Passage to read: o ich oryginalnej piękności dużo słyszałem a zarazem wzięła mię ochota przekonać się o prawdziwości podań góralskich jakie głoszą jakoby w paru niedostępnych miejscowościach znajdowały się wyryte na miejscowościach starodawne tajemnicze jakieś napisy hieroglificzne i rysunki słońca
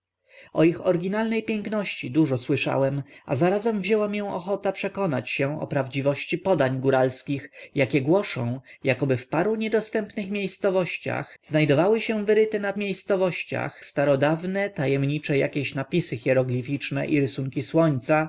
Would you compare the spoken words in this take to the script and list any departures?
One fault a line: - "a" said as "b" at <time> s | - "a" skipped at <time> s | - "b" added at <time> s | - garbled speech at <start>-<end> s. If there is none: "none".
none